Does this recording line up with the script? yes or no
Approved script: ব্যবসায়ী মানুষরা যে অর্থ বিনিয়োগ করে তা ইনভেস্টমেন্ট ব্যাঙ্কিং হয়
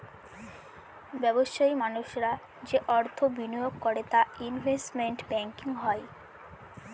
yes